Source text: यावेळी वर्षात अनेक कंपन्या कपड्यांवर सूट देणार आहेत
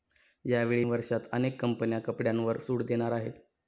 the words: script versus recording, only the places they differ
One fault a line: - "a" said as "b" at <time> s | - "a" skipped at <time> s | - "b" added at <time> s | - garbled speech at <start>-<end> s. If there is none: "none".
none